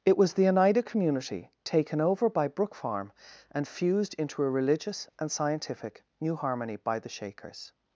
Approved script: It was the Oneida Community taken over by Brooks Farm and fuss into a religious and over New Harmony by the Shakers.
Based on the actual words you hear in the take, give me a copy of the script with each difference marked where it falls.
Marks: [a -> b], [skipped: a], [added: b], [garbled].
It was the Oneida Community taken over by [Brooks -> Brook] Farm and [fuss -> fused] into a religious and [over -> scientific] New Harmony by the Shakers.